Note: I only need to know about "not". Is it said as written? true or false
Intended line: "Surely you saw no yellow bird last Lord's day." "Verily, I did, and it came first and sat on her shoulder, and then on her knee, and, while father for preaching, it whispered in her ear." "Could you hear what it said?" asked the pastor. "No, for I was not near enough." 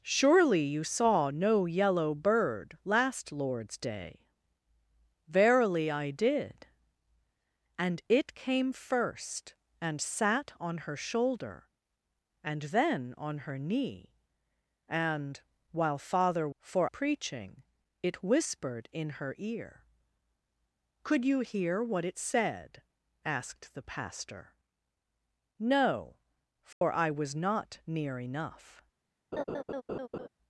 true